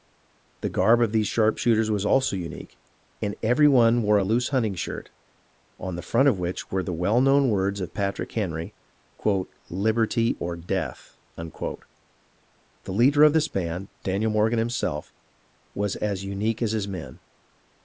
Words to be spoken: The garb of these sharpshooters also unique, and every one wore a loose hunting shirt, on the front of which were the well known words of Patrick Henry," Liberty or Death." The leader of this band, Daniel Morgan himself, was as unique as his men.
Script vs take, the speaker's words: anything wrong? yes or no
yes